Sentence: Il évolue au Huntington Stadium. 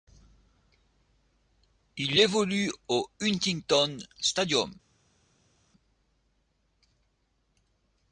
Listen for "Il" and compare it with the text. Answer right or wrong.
right